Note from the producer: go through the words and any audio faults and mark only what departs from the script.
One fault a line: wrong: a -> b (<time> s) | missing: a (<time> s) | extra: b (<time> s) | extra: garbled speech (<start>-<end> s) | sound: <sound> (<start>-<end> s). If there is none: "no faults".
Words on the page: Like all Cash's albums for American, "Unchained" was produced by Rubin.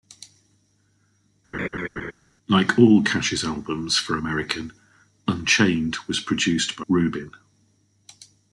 sound: laugh (1.5-2.1 s)